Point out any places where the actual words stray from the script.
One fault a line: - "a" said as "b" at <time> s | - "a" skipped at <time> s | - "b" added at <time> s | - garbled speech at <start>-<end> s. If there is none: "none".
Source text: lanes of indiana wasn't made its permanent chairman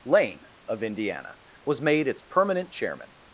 - "lanes" said as "lane" at 0.0 s
- "wasn't" said as "was" at 1.7 s